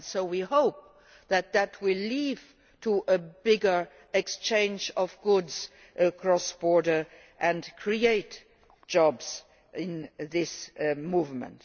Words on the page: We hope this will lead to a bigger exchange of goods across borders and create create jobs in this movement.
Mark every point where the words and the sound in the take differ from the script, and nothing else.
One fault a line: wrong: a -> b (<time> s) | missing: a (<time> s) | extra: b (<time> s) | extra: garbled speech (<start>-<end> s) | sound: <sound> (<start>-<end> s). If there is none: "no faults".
extra: that (1.3 s)
missing: create (8.4 s)